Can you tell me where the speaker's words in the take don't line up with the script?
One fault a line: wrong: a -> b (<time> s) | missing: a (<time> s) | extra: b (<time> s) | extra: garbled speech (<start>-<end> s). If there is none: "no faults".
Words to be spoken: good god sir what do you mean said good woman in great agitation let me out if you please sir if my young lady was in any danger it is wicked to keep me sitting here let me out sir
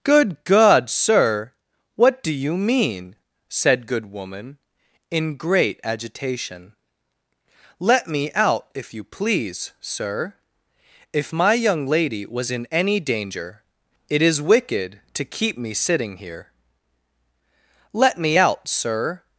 no faults